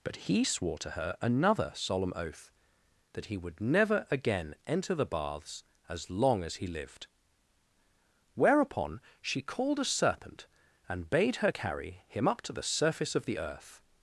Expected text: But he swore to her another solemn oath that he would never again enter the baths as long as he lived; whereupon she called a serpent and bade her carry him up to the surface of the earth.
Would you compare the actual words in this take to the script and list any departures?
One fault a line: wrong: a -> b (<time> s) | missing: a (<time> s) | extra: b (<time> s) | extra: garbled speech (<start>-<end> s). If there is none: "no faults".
no faults